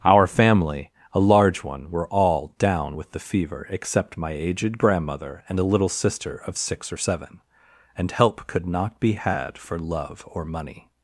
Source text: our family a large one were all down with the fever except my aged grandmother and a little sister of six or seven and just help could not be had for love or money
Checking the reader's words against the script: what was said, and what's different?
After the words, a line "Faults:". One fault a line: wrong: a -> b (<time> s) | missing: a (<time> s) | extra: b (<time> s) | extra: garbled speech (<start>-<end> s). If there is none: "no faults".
our family a large one were all down with the fever except my aged grandmother and a little sister of six or seven and help could not be had for love or money
Faults:
missing: just (8.1 s)